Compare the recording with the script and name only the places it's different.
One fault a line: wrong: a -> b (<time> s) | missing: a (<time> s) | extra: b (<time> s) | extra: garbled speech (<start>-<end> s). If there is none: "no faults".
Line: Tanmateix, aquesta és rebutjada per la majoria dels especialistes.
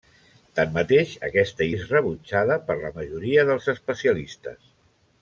no faults